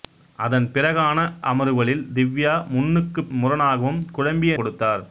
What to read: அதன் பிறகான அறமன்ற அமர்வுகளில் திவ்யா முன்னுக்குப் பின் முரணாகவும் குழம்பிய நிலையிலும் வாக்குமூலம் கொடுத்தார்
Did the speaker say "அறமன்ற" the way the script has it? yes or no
no